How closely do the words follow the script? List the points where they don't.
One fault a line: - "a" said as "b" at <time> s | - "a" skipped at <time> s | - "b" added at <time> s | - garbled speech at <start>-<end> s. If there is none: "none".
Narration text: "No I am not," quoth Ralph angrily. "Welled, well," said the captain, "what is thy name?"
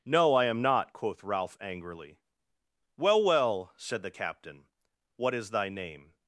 - "Welled" said as "Well" at 3.0 s